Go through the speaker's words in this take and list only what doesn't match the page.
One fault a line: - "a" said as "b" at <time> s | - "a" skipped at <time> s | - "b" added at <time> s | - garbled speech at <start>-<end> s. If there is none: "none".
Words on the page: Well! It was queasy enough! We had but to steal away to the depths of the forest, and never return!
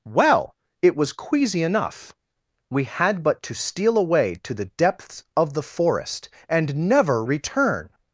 none